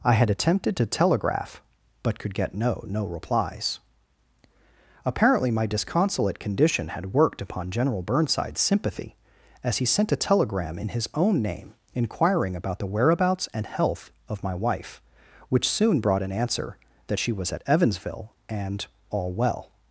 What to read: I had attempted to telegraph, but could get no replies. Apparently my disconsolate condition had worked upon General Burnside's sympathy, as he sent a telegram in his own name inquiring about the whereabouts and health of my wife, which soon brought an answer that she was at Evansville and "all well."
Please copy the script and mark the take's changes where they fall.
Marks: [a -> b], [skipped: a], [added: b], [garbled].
I had attempted to telegraph, but could get no [added: no] replies. Apparently my disconsolate condition had worked upon General Burnside's sympathy, as he sent a telegram in his own name inquiring about the whereabouts and health of my wife, which soon brought an answer that she was at Evansville and "all well."